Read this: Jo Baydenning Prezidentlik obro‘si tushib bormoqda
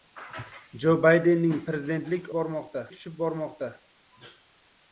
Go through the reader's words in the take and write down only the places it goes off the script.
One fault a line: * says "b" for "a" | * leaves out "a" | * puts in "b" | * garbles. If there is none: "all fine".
* says "bormoqda" for "obro‘si"